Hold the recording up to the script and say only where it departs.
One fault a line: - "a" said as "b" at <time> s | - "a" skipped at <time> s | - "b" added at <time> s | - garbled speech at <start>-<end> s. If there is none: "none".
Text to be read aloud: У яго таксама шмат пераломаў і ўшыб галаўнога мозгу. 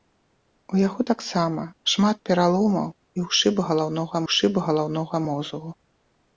- "ўшыб галаўнога" added at 4.2 s